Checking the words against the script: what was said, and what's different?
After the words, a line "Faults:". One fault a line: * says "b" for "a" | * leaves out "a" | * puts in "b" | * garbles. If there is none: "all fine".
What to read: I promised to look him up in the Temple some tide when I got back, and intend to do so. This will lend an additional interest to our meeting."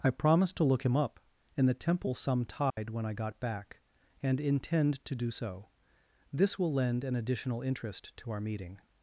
I promised to look him up in the Temple some tide when I got back, and intend to do so. This will lend an additional interest to our meeting."
Faults:
all fine